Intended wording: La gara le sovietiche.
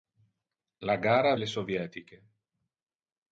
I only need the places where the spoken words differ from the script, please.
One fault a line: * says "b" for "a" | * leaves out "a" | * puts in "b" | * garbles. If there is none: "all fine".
all fine